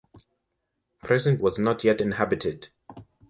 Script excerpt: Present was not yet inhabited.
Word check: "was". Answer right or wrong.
right